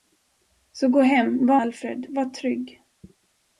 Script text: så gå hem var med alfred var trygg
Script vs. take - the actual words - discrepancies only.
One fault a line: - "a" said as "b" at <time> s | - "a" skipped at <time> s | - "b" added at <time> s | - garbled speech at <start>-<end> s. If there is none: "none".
- "med" skipped at 1.6 s